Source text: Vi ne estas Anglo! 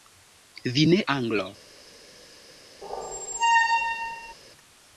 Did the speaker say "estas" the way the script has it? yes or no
no